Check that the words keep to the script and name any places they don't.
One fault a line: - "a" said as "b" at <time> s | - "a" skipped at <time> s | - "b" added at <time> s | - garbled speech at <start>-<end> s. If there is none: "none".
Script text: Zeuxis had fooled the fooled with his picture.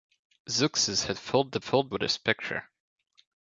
none